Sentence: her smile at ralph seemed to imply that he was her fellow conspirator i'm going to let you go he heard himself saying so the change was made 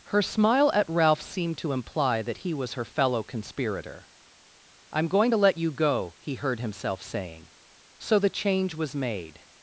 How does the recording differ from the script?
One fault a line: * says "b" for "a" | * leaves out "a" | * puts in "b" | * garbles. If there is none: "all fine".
all fine